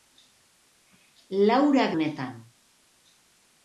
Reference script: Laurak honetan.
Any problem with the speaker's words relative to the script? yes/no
no